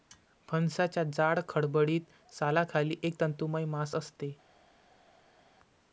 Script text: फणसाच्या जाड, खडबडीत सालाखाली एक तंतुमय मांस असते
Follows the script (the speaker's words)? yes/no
yes